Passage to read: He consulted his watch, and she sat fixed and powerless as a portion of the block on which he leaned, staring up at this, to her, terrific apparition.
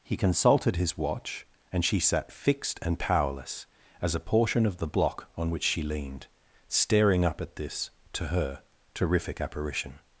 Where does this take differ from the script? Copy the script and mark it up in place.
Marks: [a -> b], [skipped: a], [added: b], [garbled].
He consulted his watch, and she sat fixed and powerless as a portion of the block on which [he -> she] leaned, staring up at this, to her, terrific apparition.